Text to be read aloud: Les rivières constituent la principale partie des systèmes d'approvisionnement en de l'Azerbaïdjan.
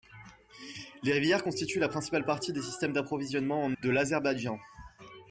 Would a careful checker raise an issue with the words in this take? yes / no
no